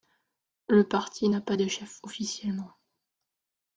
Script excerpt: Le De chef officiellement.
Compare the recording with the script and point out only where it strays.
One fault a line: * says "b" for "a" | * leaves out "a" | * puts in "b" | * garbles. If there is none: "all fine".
* puts in "Parti n'a pas"